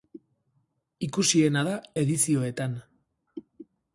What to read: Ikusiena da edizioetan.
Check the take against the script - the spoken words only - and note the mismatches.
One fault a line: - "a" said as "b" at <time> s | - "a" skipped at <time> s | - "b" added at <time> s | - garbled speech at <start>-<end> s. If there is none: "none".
none